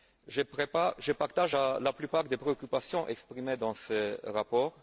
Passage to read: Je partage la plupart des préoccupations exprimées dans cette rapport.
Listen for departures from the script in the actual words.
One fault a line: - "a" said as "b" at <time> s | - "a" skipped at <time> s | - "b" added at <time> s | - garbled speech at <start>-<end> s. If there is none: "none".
- "cette" said as "ce" at 3.7 s